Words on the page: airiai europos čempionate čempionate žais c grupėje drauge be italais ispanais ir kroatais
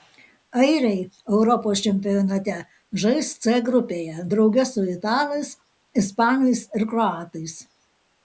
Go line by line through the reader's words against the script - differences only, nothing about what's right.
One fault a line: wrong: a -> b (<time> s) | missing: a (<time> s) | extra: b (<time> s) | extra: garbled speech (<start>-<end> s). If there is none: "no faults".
missing: čempionate (2.6 s)
wrong: be -> su (4.7 s)